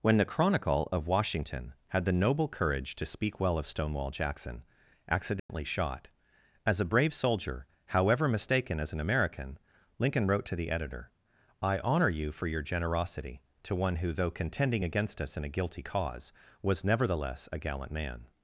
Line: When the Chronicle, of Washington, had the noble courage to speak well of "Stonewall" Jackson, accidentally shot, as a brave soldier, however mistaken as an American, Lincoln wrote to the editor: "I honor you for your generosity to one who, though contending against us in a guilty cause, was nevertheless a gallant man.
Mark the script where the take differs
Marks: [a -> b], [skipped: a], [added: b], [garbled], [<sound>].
When the Chronicle, of Washington, had the noble courage to speak well of "Stonewall" Jackson, accidentally [dropout] shot, as a brave soldier, however mistaken as an American, Lincoln wrote to the editor: "I honor you for your generosity to one who, though contending against us in a guilty cause, was nevertheless a gallant man.